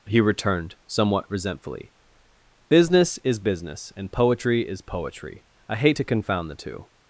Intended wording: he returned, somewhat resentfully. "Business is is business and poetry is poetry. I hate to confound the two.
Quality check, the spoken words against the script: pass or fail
fail